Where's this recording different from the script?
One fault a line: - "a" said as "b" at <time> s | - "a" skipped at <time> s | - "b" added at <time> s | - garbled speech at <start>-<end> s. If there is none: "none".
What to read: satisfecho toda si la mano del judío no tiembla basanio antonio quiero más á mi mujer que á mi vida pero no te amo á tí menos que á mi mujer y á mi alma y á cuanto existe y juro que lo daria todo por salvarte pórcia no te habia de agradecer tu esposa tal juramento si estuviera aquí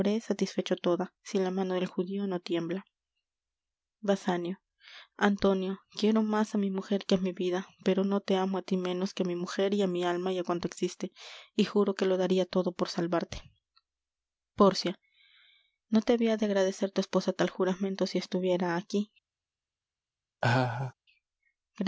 none